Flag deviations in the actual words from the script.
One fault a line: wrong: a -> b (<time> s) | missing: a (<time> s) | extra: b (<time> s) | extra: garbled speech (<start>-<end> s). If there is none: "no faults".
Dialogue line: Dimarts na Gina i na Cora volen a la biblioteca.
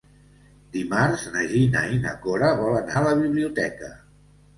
no faults